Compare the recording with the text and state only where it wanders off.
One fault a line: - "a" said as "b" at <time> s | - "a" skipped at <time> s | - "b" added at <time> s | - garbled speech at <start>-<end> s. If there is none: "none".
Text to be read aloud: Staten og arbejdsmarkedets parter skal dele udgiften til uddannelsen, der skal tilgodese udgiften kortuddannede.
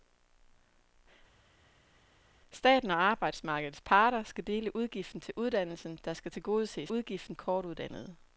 none